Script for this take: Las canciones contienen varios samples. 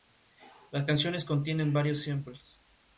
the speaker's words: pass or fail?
pass